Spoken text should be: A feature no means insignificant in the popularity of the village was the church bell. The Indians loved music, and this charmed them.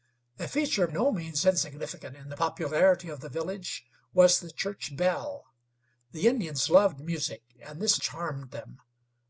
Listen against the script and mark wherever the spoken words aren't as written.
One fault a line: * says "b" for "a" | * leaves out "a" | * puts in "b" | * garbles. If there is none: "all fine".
all fine